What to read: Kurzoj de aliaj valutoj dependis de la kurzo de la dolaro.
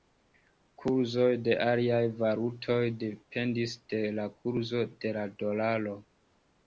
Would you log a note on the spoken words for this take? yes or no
no